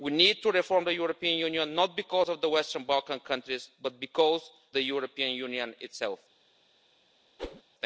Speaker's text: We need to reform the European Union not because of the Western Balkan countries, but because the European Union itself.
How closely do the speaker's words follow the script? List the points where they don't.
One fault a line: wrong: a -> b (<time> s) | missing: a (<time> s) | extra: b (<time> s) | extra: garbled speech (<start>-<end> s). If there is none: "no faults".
no faults